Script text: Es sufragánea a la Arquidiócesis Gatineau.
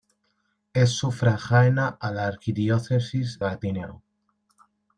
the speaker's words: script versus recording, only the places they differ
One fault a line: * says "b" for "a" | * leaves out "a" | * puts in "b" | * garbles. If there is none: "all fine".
all fine